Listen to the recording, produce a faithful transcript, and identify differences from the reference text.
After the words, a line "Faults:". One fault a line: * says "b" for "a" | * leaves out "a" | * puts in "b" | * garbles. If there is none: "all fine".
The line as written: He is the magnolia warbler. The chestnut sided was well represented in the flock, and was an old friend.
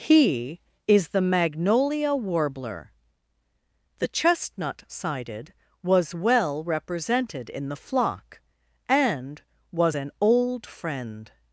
He is the magnolia warbler. The chestnut sided was well represented in the flock, and was an old friend.
Faults:
all fine